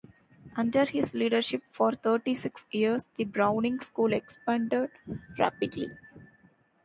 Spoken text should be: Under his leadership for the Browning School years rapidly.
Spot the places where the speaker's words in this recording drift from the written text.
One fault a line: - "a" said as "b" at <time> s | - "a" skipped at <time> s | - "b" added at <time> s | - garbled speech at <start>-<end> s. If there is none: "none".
- "thirty six years" added at 1.9 s
- "years" said as "expanded" at 4.1 s